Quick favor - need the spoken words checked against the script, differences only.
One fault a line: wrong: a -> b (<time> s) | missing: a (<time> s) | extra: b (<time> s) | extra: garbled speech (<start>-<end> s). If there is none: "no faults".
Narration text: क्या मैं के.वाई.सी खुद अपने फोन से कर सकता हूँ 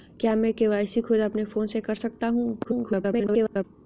extra: garbled speech (2.6-3.6 s)